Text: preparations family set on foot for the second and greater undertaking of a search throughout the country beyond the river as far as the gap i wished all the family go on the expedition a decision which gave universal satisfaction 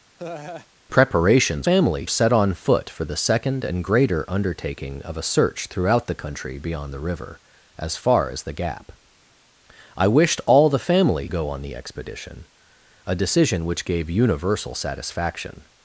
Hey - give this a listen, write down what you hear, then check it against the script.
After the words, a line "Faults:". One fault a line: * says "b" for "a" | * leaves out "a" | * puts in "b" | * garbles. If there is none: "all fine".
preparations family set on foot for the second and greater undertaking of a search throughout the country beyond the river as far as the gap i wished all the family go on the expedition a decision which gave universal satisfaction
Faults:
all fine